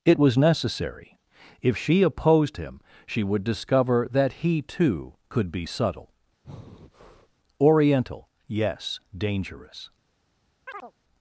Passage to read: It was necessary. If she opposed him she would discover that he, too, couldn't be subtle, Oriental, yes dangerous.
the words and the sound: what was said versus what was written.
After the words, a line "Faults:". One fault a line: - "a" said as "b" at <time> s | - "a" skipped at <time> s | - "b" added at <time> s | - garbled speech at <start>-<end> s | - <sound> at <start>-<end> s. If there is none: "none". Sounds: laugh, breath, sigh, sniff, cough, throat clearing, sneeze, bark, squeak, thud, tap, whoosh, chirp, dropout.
It was necessary. If she opposed him she would discover that he, too, could be subtle, Oriental, yes dangerous.
Faults:
- "couldn't" said as "could" at 5.3 s
- breath at 6.4-7.3 s
- chirp at 10.7-10.9 s